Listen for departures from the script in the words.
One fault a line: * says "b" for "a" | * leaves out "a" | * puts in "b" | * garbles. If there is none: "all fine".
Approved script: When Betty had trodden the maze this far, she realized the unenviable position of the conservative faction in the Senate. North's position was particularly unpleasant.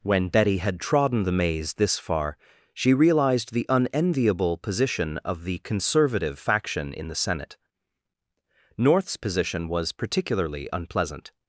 all fine